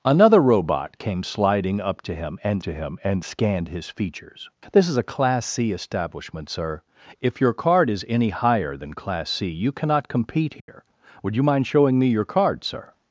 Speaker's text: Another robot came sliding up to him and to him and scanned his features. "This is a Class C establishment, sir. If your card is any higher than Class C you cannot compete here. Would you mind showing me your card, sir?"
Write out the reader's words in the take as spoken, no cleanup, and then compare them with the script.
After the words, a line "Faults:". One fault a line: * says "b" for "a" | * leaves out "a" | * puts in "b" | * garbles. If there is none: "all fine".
Another robot came sliding up to him and to him and scanned his features. "This is a Class C establishment, sir. If your card is any higher than Class C you cannot compete here. Would you mind showing me your card, sir?"
Faults:
all fine